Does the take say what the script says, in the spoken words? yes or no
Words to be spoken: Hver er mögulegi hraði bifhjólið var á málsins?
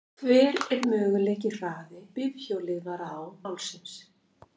yes